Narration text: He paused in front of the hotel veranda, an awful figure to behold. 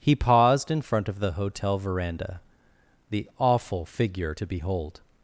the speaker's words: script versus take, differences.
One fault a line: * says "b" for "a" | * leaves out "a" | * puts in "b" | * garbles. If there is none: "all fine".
* says "the" for "an"